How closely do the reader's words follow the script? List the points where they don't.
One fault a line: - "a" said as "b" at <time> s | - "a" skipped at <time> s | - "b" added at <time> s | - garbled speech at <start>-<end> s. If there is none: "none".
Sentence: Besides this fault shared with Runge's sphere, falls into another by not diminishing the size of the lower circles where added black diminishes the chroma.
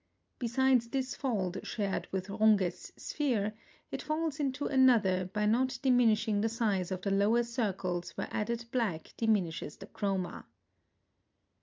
- "it" added at 3.9 s